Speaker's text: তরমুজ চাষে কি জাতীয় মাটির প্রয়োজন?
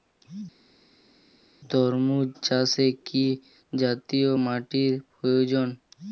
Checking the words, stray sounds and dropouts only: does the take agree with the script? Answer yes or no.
yes